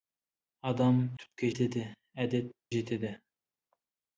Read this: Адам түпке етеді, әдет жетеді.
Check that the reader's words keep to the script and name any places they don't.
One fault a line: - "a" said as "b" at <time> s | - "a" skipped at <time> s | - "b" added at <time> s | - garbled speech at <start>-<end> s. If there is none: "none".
none